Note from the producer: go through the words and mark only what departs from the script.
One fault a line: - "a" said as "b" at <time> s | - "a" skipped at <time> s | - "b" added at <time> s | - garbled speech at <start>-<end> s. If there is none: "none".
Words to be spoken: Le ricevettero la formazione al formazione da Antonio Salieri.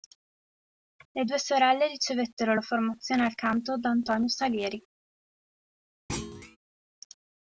- "due sorelle" added at 1.2 s
- "formazione" said as "canto" at 3.3 s